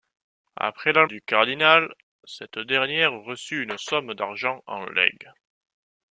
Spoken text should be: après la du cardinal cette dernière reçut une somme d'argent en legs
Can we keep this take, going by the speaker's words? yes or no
yes